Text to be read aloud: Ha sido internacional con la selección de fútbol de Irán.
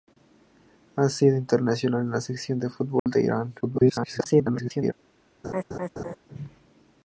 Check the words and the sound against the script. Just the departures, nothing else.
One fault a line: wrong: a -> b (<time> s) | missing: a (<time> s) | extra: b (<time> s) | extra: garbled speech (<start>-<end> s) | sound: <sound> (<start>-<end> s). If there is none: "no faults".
sound: dropout (3.0-3.1 s)
extra: garbled speech (3.6-4.9 s)
sound: laugh (5.4-6.2 s)